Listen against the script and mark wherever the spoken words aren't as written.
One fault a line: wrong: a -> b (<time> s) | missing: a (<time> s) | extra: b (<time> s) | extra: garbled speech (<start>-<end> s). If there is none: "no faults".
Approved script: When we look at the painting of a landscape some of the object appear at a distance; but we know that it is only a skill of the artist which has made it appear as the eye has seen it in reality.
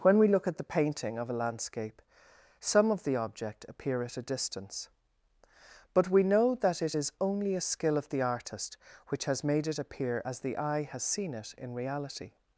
no faults